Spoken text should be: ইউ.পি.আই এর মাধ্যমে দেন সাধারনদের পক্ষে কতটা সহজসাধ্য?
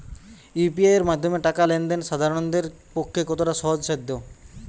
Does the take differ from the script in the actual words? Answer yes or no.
yes